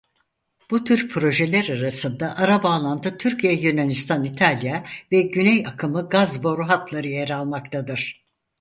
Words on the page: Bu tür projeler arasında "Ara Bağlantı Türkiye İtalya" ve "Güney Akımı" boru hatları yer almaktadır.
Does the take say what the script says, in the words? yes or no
no